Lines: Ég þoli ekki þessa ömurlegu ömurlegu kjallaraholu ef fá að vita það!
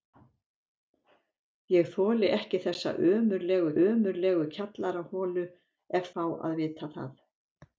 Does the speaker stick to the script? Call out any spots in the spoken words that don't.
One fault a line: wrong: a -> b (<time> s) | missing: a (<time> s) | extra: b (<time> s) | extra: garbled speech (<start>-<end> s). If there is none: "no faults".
no faults